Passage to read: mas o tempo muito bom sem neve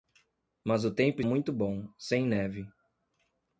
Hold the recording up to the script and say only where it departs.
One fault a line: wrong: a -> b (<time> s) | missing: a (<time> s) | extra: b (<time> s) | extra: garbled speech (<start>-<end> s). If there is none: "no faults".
no faults